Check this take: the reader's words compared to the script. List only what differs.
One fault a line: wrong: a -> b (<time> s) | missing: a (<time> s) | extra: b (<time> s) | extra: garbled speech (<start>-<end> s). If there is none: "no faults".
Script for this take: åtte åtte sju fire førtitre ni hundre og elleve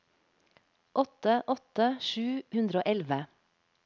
missing: fire førtitre ni (2.2 s)